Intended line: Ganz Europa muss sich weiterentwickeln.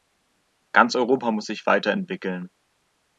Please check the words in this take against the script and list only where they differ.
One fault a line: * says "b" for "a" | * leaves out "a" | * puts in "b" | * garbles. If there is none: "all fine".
all fine